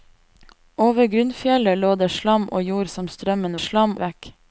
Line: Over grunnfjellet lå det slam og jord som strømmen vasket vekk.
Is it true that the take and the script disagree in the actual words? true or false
true